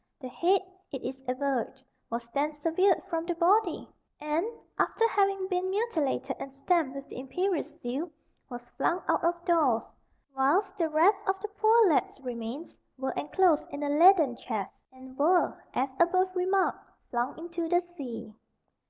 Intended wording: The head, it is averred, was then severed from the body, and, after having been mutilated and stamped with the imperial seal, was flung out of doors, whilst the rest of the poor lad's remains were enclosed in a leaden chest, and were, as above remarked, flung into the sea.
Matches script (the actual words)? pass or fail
pass